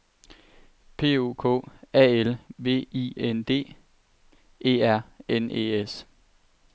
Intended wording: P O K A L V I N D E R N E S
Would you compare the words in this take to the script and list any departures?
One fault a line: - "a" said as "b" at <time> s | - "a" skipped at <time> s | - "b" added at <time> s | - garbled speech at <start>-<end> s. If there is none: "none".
none